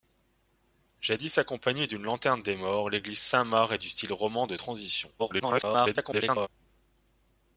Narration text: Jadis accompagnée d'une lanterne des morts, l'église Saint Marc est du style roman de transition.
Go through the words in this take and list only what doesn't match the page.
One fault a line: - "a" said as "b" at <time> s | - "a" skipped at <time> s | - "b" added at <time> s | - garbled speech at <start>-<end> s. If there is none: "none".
- garbled speech at 5.2-6.5 s